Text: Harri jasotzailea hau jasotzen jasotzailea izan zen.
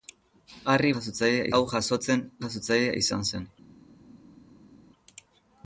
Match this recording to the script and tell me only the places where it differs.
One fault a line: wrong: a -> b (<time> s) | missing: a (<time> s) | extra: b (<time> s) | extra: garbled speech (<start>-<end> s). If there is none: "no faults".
no faults